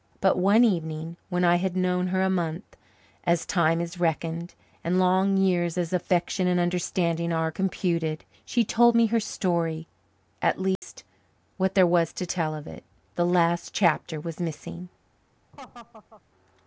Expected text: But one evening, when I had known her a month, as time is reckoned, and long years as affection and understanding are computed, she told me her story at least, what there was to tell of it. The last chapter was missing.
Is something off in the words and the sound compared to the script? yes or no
yes